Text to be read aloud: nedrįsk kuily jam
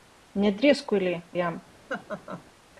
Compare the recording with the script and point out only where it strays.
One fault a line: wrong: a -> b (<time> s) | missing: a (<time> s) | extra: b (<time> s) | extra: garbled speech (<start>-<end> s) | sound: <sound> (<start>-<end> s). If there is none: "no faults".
sound: laugh (1.9-2.4 s)